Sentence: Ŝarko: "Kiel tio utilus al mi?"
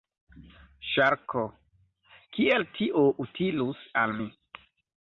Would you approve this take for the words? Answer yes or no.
yes